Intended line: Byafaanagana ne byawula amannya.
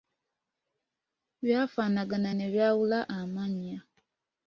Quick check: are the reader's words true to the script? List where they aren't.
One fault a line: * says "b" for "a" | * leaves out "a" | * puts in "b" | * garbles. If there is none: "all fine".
all fine